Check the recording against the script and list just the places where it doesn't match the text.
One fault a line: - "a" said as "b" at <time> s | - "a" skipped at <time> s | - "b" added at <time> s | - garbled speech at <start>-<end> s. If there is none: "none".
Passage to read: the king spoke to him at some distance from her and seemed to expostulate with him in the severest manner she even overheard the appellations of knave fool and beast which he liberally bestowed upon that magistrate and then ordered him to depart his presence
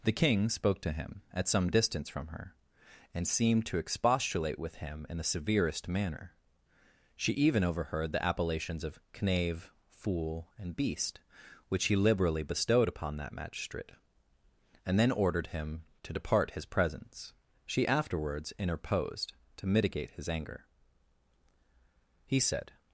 - "she afterwards interposed to mitigate his anger he said" added at 17.7 s